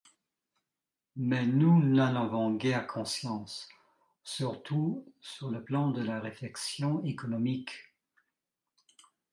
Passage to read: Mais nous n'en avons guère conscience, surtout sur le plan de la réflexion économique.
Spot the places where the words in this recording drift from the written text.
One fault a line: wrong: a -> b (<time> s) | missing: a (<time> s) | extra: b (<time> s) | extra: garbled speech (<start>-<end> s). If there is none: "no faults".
no faults